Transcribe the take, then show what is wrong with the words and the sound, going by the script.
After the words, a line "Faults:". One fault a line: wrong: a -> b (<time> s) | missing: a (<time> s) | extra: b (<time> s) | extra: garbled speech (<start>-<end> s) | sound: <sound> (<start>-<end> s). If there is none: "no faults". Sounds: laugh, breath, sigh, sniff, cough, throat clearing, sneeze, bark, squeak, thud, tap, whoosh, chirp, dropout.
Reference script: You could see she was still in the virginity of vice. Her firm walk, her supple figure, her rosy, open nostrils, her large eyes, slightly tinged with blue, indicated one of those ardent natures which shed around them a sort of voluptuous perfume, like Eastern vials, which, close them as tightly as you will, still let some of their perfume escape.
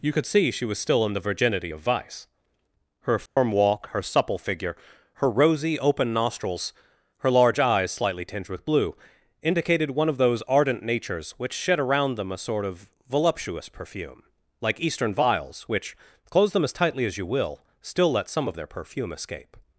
You could see she was still in the virginity of vice. Her firm walk, her supple figure, her rosy, open nostrils, her large eyes, slightly tinged with blue, indicated one of those ardent natures which shed around them a sort of voluptuous perfume, like Eastern vials, which, close them as tightly as you will, still let some of their perfume escape.
Faults:
sound: dropout (3.3-3.4 s)